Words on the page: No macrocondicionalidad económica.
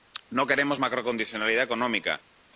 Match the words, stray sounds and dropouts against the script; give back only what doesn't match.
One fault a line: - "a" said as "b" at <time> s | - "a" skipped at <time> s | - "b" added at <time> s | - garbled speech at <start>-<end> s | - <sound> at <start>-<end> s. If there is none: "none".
- "queremos" added at 0.5 s